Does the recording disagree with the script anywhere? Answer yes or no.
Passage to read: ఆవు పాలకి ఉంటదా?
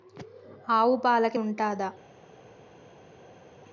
no